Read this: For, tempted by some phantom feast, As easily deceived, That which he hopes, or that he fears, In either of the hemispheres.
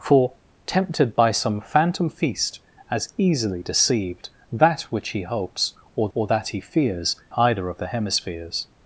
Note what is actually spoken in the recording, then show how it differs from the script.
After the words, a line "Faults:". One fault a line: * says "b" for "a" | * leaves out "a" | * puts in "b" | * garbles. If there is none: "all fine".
For, tempted by some phantom feast, As easily deceived, That which he hopes, or or that he fears, Either of the hemispheres.
Faults:
* puts in "or"
* leaves out "In"